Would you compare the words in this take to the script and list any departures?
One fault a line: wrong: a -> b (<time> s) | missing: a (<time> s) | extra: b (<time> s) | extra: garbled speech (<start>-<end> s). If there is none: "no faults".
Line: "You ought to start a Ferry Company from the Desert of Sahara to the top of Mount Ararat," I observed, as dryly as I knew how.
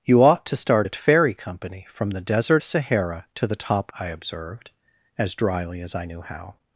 missing: of (2.6 s)
missing: of Mount Ararat (3.9 s)